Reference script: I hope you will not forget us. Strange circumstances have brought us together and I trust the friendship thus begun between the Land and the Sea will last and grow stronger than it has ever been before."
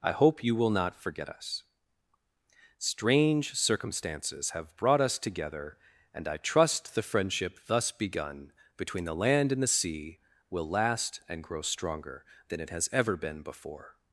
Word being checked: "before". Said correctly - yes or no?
yes